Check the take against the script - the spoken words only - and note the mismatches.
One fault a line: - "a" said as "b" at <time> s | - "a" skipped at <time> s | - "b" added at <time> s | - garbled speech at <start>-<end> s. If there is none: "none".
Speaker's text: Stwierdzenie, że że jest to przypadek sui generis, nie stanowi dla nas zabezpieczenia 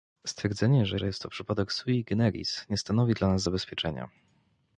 none